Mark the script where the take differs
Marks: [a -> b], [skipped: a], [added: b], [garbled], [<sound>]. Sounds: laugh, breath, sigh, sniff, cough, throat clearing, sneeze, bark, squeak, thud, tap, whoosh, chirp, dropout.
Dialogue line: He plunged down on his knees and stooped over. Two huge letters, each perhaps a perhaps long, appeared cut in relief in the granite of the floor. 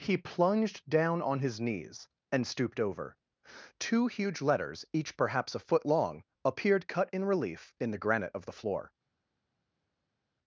He plunged down on his knees and stooped over. Two huge letters, each perhaps a [perhaps -> foot] long, appeared cut in relief in the granite of the floor.